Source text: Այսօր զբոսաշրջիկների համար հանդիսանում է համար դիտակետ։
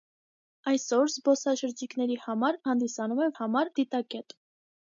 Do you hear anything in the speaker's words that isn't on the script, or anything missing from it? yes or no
no